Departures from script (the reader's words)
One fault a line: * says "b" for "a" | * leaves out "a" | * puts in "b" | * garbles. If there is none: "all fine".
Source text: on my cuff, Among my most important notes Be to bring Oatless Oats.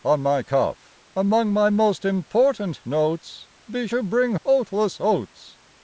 all fine